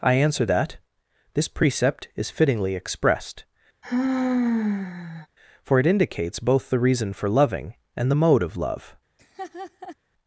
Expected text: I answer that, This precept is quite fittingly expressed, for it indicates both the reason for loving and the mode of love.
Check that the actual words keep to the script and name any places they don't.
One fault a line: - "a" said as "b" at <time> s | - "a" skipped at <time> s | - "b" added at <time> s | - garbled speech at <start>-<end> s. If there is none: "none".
- "quite" skipped at 2.3 s